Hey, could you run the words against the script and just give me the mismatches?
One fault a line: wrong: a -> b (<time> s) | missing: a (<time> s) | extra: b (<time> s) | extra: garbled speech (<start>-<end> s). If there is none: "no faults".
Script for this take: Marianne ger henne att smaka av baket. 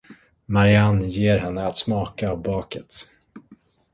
no faults